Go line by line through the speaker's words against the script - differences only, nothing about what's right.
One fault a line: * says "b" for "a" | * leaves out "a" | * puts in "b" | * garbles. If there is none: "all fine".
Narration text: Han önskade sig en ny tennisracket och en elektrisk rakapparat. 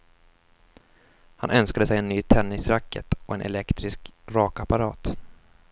all fine